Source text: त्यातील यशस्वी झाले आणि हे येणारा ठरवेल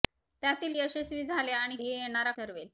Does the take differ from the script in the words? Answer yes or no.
no